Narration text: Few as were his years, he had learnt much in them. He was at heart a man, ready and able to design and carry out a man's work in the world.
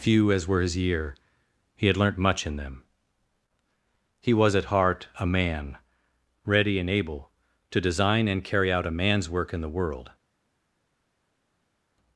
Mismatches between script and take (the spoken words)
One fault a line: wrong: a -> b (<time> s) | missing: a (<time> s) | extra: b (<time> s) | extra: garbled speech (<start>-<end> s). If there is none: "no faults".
wrong: years -> year (0.8 s)